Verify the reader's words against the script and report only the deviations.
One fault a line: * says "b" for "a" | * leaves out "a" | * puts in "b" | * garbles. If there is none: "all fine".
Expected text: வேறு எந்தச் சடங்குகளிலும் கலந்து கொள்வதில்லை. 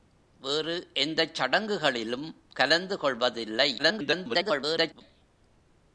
* garbles